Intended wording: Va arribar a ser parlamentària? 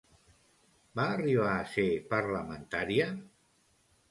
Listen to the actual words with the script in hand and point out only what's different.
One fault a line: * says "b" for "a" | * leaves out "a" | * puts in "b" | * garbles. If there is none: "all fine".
all fine